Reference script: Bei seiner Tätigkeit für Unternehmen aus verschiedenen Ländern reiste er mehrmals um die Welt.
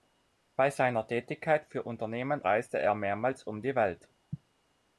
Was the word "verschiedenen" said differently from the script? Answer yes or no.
yes